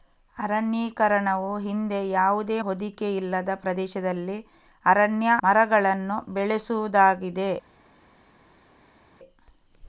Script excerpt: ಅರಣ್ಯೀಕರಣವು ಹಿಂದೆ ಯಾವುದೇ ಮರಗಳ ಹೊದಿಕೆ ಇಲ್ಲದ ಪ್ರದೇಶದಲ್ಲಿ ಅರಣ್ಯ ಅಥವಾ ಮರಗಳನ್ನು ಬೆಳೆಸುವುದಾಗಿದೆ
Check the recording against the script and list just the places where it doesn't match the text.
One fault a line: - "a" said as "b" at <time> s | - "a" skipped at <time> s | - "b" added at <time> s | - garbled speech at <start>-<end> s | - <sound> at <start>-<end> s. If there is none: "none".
- "ಮರಗಳ" skipped at 2.6 s
- "ಅಥವಾ" skipped at 5.3 s